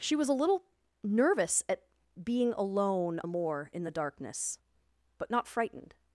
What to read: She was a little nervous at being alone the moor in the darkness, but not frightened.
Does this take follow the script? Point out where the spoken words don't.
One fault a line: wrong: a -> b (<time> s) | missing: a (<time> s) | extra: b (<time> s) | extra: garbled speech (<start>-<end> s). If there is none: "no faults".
no faults